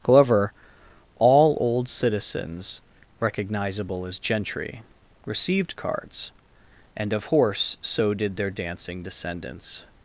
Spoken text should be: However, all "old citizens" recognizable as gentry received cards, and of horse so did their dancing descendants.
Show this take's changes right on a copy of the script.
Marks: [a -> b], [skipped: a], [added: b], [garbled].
However, all "old citizens" recognizable as gentry received cards, and of horse so did their dancing descendants.